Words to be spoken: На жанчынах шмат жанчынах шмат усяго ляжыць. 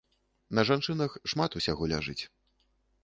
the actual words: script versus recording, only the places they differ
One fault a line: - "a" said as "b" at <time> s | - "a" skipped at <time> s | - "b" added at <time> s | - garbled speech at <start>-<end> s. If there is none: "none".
- "жанчынах шмат" skipped at 1.6 s